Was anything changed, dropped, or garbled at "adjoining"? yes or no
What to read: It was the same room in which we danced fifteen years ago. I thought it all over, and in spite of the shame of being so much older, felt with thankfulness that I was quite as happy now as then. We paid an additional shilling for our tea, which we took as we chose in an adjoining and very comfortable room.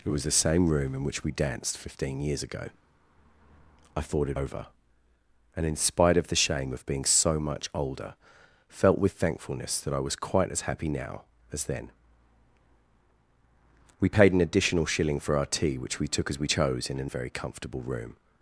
yes